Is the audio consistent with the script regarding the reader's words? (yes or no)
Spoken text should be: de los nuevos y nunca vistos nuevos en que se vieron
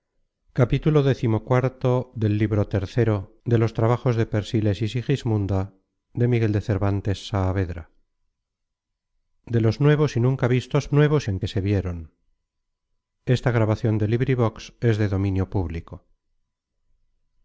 yes